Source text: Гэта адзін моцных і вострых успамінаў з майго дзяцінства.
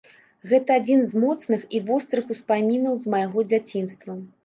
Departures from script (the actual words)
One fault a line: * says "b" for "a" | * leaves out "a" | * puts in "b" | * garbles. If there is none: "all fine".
* puts in "з"